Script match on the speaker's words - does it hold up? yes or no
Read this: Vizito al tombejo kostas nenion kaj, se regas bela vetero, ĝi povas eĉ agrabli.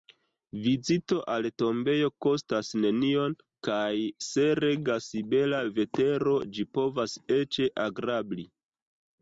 yes